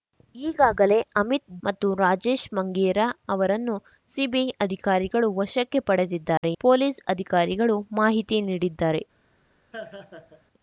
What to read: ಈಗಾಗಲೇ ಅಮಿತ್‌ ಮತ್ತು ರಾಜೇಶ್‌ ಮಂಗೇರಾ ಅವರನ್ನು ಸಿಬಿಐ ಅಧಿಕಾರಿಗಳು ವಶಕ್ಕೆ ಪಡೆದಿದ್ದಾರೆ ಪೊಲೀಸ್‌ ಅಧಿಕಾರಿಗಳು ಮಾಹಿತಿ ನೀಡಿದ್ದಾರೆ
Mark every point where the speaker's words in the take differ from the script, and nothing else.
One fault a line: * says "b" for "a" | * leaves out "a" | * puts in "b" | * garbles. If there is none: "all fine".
all fine